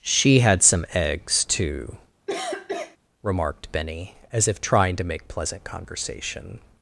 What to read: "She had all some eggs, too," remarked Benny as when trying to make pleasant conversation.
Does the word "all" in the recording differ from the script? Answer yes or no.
yes